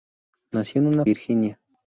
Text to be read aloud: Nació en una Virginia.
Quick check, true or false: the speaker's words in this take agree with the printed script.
true